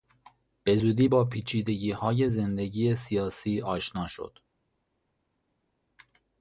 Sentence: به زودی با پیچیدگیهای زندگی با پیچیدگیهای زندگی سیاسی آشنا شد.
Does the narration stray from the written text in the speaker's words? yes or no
yes